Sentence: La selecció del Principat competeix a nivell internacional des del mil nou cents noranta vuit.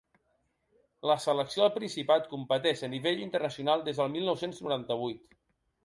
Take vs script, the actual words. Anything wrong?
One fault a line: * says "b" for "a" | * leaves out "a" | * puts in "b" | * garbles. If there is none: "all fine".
all fine